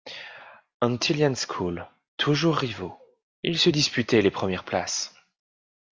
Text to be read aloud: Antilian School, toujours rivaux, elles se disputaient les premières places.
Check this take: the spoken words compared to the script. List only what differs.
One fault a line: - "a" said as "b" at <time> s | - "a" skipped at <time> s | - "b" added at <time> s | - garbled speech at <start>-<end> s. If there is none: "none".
- "elles" said as "ils" at 3.4 s